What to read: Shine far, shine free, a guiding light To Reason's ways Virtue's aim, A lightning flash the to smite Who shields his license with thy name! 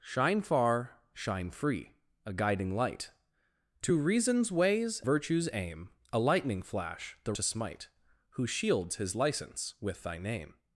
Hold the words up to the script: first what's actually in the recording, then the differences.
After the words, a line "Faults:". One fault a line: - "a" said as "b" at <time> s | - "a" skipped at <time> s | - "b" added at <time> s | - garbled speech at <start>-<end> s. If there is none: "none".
Shine far, shine free, a guiding light To Reason's ways Virtue's aim, A lightning flash the to smite Who shields his license with thy name!
Faults:
none